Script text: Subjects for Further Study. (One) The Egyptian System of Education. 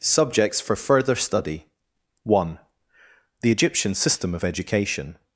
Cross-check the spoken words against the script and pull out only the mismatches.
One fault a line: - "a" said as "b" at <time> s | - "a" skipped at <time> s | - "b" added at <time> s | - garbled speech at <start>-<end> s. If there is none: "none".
none